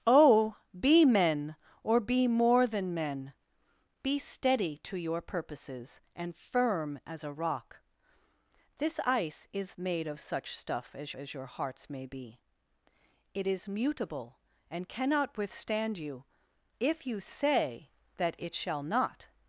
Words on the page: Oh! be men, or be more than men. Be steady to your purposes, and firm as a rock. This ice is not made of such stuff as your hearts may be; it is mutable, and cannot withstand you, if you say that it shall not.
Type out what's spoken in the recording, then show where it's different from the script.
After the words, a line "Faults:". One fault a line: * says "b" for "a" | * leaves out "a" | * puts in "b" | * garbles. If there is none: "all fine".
Oh! be men, or be more than men. Be steady to your purposes, and firm as a rock. This ice is made of such stuff as as your hearts may be; it is mutable, and cannot withstand you, if you say that it shall not.
Faults:
* leaves out "not"
* puts in "as"